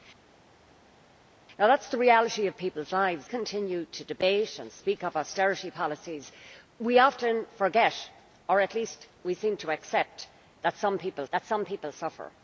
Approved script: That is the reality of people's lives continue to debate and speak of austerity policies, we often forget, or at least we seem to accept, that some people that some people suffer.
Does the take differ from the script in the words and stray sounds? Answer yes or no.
no